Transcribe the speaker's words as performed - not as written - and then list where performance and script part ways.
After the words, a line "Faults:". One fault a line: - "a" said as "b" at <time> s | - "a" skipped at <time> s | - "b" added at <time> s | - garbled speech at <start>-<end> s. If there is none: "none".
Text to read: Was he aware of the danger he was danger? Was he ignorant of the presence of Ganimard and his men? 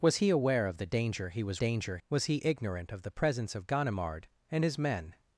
Was he aware of the danger he was danger? Was he ignorant of the presence of Ganimard and his men?
Faults:
none